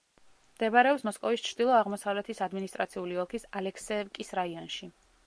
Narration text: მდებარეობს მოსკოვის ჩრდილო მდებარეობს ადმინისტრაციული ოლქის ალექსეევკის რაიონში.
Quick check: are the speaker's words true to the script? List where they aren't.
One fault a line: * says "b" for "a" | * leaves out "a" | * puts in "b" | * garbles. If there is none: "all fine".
* says "აღმოსავლეთის" for "მდებარეობს"